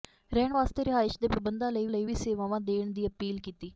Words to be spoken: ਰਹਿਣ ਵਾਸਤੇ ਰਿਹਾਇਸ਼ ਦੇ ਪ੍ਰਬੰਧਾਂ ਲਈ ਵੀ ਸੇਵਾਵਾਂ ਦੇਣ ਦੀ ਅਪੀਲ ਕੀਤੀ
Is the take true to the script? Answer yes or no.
no